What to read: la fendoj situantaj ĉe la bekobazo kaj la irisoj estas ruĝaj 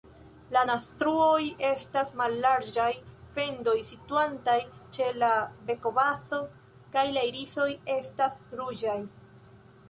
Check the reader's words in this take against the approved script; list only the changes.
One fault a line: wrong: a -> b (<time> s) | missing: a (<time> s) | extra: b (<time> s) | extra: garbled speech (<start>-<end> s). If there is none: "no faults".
extra: naztruoj estas mallarĝaj (0.6 s)